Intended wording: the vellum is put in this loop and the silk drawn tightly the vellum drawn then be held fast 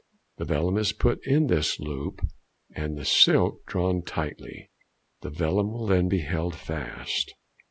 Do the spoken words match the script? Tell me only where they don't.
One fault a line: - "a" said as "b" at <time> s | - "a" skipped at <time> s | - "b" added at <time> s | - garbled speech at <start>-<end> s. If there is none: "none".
- "drawn" said as "will" at 5.7 s